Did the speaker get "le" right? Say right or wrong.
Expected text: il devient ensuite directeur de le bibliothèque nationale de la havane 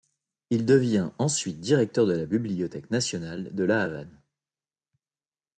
wrong